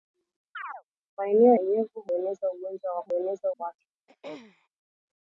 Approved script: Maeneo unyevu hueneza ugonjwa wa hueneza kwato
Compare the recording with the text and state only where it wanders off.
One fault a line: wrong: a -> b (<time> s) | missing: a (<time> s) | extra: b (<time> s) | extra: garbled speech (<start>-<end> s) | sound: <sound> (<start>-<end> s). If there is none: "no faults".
sound: chirp (0.5-0.8 s)
sound: throat clearing (4.1-4.7 s)